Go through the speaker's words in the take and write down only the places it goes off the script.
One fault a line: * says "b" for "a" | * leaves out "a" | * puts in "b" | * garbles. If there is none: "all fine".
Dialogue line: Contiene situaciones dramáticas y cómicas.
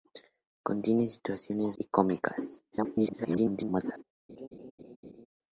* leaves out "dramáticas"
* garbles